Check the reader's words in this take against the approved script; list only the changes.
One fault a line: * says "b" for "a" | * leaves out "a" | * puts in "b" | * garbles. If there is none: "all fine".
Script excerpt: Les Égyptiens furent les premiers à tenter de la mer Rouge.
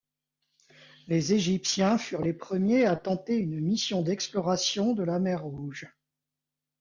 * puts in "une mission d'exploration"